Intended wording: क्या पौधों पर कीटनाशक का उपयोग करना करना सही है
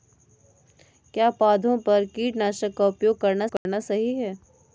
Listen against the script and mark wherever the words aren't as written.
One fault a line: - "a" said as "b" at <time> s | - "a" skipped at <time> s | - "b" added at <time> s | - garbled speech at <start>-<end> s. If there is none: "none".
none